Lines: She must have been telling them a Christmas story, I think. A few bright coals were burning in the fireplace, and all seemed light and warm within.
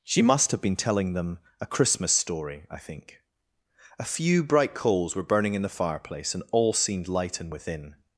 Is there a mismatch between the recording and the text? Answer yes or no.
yes